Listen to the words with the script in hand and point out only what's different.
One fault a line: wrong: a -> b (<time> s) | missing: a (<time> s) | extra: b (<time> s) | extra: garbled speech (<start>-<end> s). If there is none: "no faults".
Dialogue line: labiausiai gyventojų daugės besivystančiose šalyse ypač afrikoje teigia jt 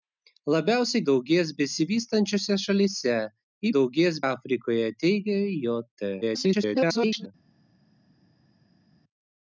missing: gyventojų (1.0 s)
wrong: ypač -> daugės (3.8 s)
extra: garbled speech (6.2-7.3 s)